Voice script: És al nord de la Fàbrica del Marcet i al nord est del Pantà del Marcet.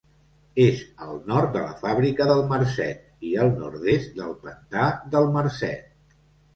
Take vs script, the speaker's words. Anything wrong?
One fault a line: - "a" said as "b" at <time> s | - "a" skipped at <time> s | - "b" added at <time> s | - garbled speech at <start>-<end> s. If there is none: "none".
none